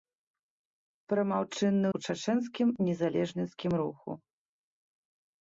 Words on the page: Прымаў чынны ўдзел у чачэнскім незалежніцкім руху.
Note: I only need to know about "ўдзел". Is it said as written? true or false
false